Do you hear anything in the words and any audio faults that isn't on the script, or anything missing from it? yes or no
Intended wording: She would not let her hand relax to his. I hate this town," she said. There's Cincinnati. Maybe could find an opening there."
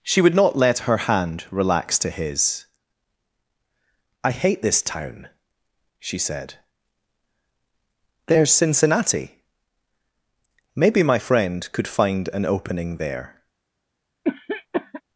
yes